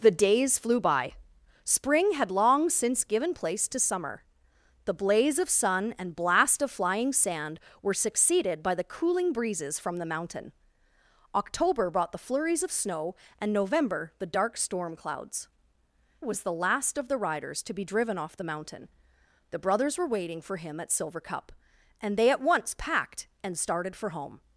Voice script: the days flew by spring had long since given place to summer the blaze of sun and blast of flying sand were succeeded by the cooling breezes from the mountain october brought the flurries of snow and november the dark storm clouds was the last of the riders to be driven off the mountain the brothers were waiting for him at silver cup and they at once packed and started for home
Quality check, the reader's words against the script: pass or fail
pass